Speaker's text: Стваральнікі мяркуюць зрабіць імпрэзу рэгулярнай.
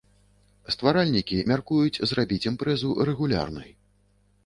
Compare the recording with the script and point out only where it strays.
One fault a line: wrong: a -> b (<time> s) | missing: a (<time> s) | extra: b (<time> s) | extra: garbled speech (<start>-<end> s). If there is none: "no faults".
no faults